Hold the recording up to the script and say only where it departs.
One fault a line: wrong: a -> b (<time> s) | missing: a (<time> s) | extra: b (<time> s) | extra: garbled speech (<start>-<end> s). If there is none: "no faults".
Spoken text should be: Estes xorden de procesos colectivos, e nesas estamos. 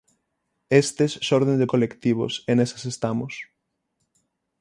missing: procesos (1.7 s)